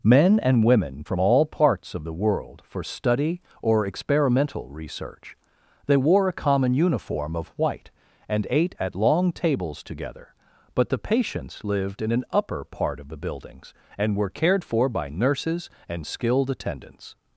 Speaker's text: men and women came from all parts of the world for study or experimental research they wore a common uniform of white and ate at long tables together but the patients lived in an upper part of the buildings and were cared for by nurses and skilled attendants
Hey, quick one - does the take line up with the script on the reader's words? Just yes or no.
no